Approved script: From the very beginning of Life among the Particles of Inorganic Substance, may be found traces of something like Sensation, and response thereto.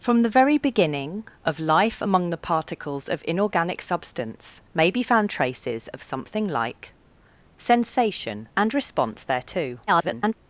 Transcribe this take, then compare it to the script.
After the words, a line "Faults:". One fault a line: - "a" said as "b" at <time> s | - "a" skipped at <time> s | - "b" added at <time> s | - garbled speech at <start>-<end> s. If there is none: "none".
From the very beginning of Life among the Particles of Inorganic Substance, may be found traces of something like Sensation, and response thereto. [garbled]
Faults:
- garbled speech at 9.9-10.3 s